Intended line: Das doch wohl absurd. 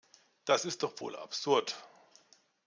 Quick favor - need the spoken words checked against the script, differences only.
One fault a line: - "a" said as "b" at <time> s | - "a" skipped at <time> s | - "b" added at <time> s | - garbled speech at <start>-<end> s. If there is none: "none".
- "ist" added at 0.7 s